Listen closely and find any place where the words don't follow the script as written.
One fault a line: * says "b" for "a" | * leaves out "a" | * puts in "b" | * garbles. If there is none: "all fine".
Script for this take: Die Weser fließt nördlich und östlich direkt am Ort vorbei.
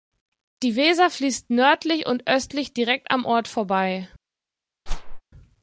all fine